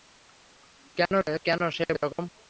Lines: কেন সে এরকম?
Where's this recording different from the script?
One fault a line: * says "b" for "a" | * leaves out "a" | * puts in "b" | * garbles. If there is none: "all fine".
all fine